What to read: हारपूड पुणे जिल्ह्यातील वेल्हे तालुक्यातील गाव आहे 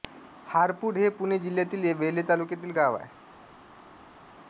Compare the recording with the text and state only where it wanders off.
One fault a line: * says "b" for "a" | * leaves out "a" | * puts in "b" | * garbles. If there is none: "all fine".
* puts in "हे"